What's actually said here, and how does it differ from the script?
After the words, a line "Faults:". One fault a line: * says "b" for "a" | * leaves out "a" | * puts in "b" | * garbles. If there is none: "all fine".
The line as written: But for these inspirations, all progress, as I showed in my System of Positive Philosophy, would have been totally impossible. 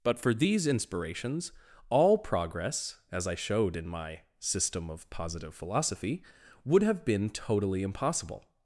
But for these inspirations, all progress, as I showed in my System of Positive Philosophy, would have been totally impossible.
Faults:
all fine